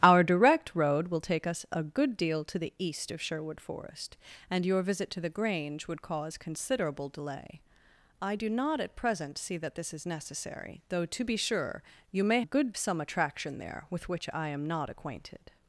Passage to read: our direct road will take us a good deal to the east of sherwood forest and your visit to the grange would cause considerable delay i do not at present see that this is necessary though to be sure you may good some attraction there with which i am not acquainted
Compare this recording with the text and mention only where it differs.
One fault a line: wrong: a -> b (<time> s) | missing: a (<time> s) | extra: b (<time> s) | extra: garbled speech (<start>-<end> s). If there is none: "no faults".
no faults